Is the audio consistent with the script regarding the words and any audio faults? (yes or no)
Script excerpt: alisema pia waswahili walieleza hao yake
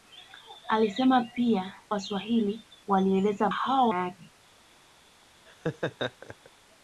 no